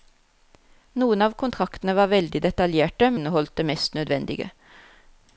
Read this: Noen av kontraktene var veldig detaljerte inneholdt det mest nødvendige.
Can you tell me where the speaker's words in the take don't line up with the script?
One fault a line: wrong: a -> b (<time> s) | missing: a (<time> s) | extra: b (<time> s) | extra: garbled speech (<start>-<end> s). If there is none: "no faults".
no faults